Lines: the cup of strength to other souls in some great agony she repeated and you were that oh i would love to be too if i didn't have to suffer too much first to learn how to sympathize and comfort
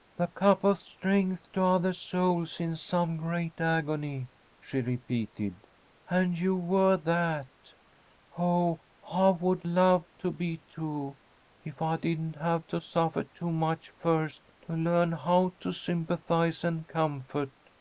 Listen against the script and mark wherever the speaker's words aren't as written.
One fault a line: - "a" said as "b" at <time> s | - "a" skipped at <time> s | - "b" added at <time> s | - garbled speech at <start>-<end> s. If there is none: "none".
none